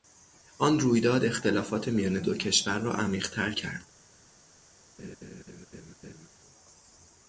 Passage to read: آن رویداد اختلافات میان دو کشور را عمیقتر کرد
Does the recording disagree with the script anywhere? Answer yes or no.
no